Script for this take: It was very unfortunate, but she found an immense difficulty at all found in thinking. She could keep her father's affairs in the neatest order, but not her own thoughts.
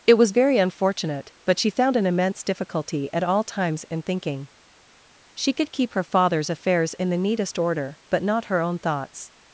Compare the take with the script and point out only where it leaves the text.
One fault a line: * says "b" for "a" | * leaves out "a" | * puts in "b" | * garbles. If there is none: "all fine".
* says "times" for "found"